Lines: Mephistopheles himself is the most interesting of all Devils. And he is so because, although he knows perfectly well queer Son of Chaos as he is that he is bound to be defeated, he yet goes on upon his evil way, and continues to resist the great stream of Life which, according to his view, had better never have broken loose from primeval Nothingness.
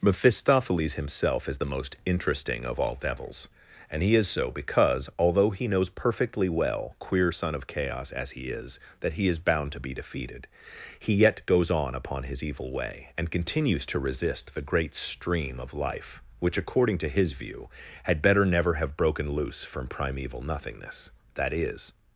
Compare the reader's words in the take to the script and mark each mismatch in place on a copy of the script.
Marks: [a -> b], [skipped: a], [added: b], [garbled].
Mephistopheles himself is the most interesting of all Devils. And he is so because, although he knows perfectly well queer Son of Chaos as he is that he is bound to be defeated, he yet goes on upon his evil way, and continues to resist the great stream of Life which, according to his view, had better never have broken loose from primeval Nothingness. [added: That is]